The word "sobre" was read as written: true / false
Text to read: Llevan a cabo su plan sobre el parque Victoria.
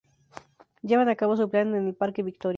false